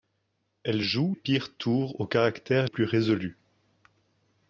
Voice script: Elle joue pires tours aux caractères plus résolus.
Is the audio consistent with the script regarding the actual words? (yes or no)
yes